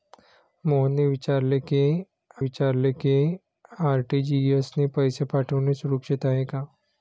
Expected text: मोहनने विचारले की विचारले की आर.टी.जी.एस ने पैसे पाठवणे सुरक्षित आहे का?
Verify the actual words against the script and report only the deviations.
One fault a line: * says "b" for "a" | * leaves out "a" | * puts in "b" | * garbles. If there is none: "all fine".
all fine